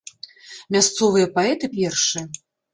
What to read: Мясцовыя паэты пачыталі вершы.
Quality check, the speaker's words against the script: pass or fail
fail